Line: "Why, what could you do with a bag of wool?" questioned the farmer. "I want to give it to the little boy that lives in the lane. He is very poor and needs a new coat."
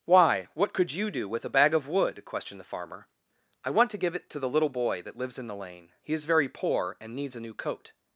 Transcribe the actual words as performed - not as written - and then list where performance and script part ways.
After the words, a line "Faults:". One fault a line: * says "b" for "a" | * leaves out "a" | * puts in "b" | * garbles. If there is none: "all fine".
"Why, what could you do with a bag of wood?" questioned the farmer. "I want to give it to the little boy that lives in the lane. He is very poor and needs a new coat."
Faults:
* says "wood" for "wool"